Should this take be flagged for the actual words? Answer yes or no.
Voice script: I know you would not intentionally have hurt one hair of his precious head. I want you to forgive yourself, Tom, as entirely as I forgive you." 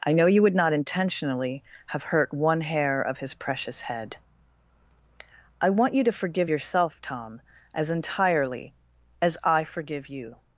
no